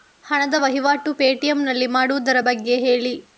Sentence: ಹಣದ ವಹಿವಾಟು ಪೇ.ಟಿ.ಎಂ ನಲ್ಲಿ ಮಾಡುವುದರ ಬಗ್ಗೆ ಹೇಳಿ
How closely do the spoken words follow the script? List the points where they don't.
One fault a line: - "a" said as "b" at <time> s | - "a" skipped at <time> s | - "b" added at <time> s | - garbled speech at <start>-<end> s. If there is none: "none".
none